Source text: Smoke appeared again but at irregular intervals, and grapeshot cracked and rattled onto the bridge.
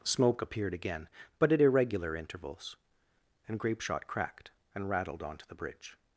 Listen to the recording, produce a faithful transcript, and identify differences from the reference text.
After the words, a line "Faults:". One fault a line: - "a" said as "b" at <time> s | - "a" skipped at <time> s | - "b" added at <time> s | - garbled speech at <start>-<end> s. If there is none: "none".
Smoke appeared again but at irregular intervals, and grapeshot cracked and rattled onto the bridge.
Faults:
none